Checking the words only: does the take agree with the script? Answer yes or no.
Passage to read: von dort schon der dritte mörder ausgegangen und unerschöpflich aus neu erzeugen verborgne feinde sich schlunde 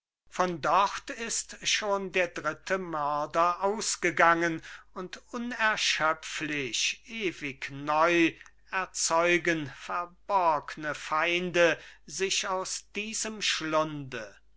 no